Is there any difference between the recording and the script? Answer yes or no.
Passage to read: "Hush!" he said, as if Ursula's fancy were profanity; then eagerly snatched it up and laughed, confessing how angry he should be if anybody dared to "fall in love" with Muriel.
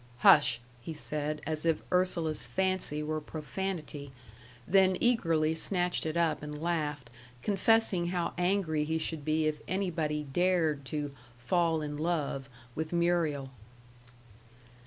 no